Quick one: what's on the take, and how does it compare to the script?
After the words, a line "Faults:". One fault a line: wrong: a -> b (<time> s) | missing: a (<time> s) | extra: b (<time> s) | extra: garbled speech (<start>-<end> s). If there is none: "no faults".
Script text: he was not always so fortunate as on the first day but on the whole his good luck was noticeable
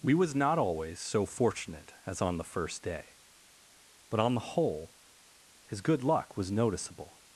we was not always so fortunate as on the first day but on the whole his good luck was noticeable
Faults:
wrong: he -> we (0.0 s)